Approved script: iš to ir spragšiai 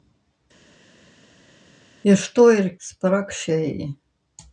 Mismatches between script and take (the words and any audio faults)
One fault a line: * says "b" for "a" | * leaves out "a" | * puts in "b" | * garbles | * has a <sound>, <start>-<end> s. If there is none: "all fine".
all fine